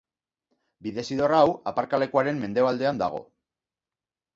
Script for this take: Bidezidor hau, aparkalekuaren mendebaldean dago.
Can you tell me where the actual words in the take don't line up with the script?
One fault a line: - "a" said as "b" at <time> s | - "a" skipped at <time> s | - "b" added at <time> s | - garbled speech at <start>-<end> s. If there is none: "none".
none